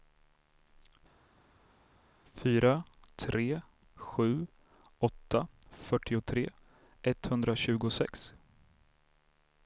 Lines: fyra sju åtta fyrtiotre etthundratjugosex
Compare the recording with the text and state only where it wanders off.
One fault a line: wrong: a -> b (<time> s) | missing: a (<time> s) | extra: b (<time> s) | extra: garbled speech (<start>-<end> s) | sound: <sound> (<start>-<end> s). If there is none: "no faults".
extra: tre (3.2 s)